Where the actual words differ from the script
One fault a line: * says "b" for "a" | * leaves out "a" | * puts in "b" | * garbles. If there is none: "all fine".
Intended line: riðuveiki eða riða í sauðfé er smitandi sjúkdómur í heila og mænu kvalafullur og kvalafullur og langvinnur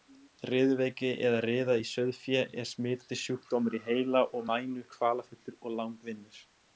* leaves out "kvalafullur og"